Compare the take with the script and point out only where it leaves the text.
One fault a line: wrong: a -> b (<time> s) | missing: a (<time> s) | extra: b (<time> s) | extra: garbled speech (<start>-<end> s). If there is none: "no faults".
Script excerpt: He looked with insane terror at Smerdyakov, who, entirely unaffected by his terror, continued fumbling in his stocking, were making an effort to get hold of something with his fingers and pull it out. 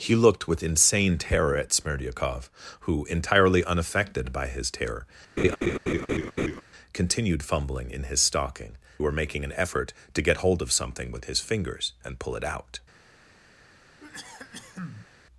no faults